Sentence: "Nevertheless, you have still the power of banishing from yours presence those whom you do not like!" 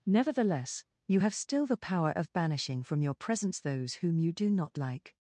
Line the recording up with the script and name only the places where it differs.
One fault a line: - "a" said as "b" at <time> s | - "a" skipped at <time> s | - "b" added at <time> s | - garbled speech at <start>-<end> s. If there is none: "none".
- "yours" said as "your" at 3.0 s